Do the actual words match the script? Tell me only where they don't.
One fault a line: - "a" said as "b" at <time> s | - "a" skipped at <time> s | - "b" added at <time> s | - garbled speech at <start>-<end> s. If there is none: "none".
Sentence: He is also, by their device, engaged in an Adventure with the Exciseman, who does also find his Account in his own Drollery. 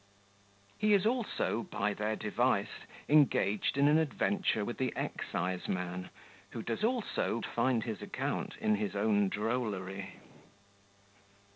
none